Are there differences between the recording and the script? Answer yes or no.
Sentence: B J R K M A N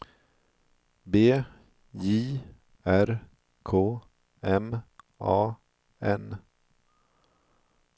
no